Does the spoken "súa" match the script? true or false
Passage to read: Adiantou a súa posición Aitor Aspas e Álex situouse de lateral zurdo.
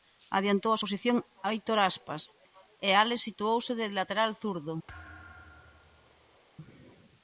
false